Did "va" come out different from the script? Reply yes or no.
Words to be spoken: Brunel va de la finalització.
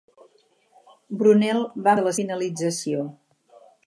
no